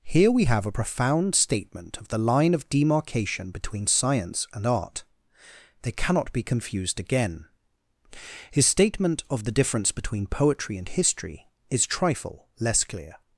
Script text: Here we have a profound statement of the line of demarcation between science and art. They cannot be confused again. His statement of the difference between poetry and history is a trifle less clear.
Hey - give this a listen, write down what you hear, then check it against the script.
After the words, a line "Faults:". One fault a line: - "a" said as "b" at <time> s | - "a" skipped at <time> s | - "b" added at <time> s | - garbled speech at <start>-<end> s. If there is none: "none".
Here we have a profound statement of the line of demarcation between science and art. They cannot be confused again. His statement of the difference between poetry and history is trifle less clear.
Faults:
- "a" skipped at 11.9 s